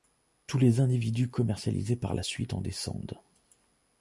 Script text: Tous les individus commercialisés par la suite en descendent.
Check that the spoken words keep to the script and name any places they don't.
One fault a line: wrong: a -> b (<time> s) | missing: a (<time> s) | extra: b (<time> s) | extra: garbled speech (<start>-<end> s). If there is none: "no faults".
no faults